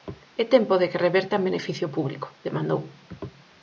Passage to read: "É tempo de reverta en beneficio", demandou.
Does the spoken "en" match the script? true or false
true